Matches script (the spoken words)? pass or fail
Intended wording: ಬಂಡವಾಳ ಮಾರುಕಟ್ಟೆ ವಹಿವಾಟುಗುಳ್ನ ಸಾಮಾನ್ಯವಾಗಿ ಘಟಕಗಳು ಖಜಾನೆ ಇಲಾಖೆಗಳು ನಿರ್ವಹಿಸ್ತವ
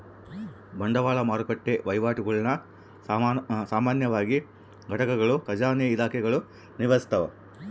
pass